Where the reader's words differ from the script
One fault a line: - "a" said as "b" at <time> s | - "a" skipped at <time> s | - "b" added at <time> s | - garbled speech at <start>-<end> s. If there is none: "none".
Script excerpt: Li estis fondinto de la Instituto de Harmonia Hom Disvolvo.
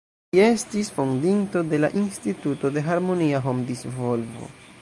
none